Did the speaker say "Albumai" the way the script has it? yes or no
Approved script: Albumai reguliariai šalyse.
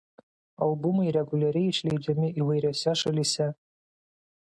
yes